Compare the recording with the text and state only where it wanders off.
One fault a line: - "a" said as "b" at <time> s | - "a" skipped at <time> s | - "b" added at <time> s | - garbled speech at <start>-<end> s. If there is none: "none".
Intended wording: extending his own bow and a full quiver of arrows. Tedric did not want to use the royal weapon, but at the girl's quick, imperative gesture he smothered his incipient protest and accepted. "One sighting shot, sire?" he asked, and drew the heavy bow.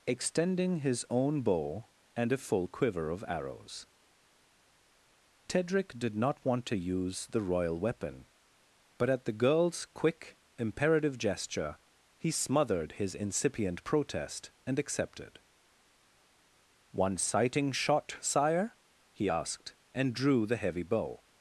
none